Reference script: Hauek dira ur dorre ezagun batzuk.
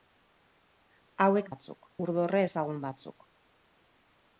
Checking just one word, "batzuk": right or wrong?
right